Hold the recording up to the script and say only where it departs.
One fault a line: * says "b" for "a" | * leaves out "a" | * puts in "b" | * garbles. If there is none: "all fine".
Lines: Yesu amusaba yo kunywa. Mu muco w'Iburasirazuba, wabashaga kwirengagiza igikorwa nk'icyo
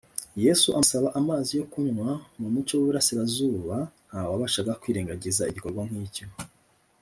* puts in "amazi"
* puts in "nta"